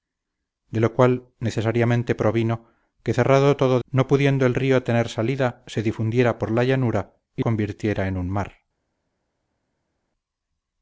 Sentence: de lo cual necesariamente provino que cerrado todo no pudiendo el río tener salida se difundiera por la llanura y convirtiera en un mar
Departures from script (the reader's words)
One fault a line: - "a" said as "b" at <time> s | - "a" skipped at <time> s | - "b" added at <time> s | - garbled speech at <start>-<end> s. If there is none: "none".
none